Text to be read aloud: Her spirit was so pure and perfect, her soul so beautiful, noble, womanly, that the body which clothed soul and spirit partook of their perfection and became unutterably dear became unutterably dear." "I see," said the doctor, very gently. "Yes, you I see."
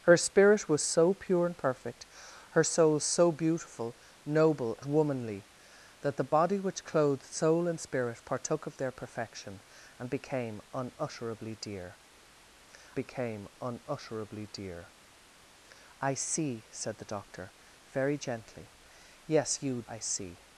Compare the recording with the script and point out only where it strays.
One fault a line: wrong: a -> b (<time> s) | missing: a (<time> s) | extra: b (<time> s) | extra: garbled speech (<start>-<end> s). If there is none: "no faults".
no faults